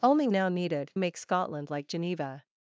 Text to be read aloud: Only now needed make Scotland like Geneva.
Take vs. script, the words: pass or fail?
pass